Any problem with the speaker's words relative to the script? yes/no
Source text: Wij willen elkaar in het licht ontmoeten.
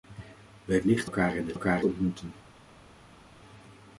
yes